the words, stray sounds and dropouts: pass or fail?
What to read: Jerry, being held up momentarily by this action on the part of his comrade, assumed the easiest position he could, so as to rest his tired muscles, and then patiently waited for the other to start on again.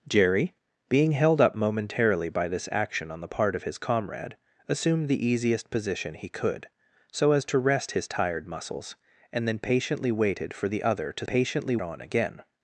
fail